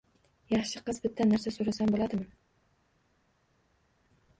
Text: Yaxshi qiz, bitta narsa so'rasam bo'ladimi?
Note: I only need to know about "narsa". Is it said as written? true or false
true